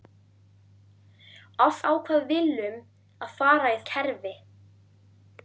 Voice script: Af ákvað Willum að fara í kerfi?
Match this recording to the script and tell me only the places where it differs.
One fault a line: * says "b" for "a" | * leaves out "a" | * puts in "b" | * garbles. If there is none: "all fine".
all fine